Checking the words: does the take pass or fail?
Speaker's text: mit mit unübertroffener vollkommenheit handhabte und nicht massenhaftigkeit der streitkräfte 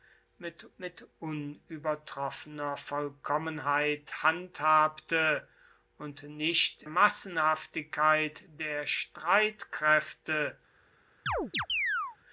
pass